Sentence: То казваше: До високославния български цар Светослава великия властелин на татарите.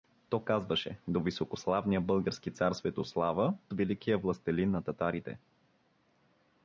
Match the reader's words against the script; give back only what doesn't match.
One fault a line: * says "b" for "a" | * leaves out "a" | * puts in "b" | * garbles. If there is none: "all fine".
all fine